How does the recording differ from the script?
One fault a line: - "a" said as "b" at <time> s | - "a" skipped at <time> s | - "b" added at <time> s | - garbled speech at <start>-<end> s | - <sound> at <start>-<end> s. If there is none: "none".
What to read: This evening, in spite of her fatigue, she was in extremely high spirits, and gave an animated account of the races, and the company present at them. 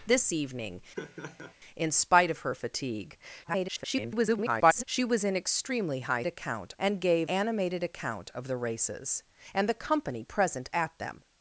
- laugh at 1.0-1.5 s
- garbled speech at 3.4-4.8 s
- "spirits" said as "account" at 6.3 s
- "an" skipped at 7.3 s